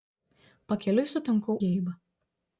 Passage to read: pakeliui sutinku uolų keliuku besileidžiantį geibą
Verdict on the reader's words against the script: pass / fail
fail